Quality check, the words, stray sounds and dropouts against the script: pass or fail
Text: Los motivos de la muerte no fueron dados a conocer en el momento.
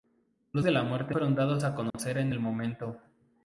fail